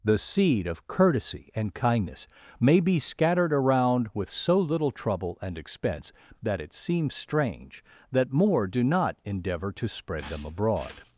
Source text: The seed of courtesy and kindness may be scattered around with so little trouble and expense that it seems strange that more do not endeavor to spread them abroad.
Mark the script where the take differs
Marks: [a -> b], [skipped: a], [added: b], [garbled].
The seed of courtesy and kindness may be scattered around with so little trouble and expense that it seems strange that more do not endeavor to spread them abroad.